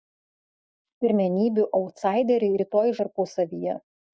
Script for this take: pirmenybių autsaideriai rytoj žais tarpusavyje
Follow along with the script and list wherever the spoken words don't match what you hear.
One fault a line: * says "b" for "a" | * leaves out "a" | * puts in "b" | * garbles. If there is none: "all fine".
* leaves out "žais"